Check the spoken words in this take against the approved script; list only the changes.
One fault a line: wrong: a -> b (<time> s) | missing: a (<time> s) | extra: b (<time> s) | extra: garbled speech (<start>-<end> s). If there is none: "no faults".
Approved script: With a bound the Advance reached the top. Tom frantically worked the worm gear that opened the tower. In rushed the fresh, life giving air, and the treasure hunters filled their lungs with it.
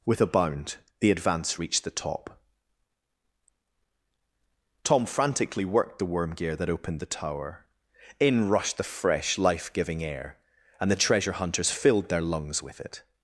no faults